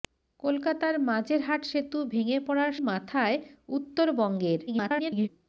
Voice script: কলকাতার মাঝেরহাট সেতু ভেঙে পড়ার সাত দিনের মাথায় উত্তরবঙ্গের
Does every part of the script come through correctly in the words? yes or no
no